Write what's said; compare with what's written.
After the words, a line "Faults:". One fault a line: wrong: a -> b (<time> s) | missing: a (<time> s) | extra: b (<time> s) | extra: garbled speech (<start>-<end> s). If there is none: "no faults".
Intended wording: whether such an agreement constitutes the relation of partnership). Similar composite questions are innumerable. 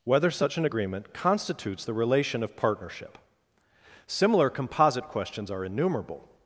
whether such an agreement constitutes the relation of partnership). Similar composite questions are innumerable.
Faults:
no faults